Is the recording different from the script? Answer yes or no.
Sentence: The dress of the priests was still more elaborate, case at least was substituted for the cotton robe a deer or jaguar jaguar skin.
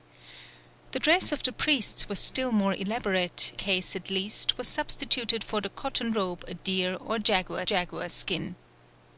no